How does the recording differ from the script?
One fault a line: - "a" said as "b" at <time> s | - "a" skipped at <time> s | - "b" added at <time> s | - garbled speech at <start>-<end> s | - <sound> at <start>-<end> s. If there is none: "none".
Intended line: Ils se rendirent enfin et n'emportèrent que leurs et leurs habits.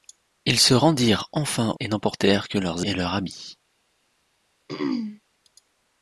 - throat clearing at 4.7-5.2 s